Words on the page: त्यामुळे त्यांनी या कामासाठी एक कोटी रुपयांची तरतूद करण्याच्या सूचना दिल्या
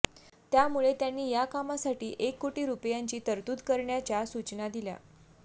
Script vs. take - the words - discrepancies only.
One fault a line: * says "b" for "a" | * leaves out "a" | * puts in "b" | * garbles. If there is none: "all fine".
all fine